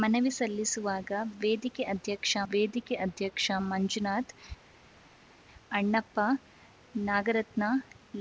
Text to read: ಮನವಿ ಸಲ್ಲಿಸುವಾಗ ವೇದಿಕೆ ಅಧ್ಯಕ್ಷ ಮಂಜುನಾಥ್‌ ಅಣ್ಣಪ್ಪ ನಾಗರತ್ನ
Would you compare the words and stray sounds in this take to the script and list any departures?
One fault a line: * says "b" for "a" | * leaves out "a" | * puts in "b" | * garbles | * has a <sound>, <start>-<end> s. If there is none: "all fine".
* puts in "ವೇದಿಕೆ ಅಧ್ಯಕ್ಷ"